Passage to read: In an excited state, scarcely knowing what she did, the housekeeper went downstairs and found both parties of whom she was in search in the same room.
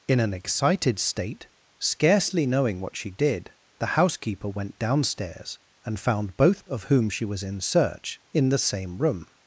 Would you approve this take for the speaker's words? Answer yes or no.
no